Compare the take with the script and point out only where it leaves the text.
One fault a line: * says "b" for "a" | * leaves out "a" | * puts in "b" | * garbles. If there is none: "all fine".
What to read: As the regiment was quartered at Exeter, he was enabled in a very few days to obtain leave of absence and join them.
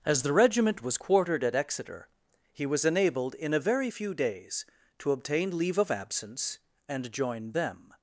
all fine